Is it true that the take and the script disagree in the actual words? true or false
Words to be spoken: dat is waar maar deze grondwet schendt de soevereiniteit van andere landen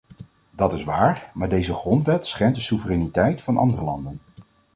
false